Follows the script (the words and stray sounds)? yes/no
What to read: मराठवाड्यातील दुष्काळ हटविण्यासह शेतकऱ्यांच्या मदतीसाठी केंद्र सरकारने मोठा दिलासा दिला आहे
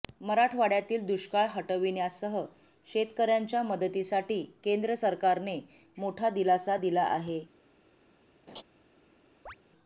no